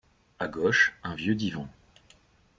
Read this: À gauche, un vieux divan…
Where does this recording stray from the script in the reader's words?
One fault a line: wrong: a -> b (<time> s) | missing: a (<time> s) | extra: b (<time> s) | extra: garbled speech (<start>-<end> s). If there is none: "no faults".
no faults